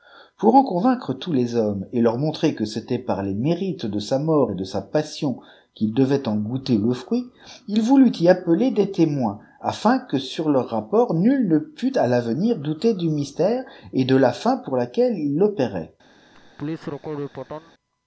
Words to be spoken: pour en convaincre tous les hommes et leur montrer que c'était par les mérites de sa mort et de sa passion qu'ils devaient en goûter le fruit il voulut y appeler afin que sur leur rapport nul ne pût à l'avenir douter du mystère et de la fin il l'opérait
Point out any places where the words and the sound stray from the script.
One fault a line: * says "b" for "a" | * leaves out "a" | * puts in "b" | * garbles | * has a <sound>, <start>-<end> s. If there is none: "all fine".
* puts in "des témoins"
* puts in "pour laquelle"
* has a laugh, 16.3-17.7 s